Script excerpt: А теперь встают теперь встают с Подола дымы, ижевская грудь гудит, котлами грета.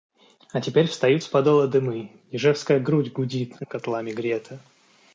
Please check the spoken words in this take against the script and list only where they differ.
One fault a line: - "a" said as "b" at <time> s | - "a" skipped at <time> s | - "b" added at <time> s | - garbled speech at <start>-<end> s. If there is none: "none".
- "теперь встают" skipped at 1.2 s